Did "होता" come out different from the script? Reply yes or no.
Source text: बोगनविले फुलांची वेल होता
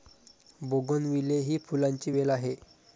yes